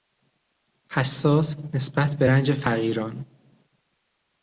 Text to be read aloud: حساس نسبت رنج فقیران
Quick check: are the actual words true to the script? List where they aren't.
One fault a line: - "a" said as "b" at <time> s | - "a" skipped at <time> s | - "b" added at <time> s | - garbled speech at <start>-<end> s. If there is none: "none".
- "به" added at 2.2 s